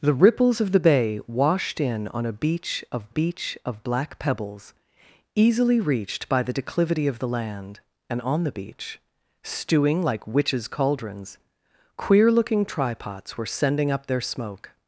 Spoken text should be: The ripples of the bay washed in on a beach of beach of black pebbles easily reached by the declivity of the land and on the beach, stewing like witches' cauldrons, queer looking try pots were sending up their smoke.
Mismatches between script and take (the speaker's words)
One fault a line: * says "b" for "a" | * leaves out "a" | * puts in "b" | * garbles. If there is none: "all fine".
all fine